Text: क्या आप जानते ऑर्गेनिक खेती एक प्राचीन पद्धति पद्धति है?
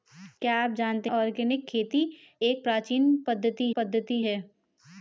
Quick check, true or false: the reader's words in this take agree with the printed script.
true